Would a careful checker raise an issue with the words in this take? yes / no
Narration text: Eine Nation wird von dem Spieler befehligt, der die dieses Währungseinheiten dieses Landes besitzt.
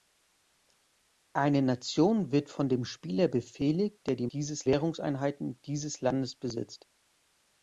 no